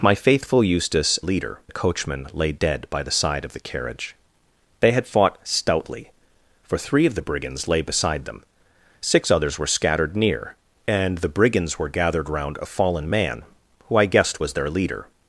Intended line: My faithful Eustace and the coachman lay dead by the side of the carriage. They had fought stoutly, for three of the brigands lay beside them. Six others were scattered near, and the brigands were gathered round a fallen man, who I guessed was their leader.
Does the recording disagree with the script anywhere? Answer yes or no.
yes